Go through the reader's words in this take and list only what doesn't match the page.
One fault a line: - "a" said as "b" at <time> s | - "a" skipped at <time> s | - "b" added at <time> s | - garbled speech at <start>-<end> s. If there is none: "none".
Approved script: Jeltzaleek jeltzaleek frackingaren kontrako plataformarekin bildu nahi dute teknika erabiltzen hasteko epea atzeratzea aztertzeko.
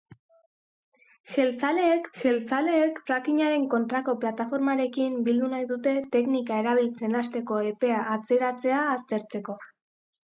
none